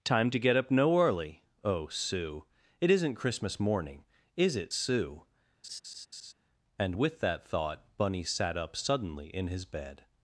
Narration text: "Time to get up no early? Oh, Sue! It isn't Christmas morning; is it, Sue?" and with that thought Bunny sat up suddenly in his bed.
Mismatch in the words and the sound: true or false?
true